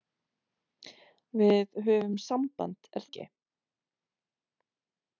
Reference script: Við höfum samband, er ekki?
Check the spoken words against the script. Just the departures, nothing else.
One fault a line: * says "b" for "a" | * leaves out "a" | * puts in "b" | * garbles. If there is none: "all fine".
all fine